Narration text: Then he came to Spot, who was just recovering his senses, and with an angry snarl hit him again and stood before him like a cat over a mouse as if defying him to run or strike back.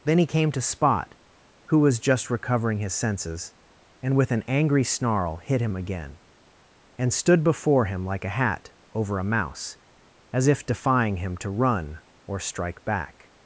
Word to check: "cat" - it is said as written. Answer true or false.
false